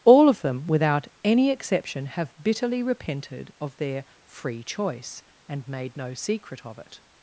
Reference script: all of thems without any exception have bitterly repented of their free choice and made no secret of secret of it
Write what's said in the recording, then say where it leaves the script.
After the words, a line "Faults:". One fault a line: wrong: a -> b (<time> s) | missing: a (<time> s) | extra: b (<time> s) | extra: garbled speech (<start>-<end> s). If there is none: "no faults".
all of them without any exception have bitterly repented of their free choice and made no secret of it
Faults:
wrong: thems -> them (0.4 s)
missing: secret of (6.8 s)